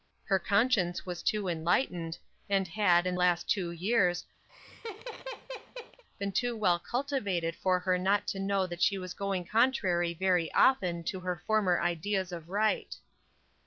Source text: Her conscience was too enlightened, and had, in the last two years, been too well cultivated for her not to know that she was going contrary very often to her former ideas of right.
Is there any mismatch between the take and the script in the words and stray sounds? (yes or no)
yes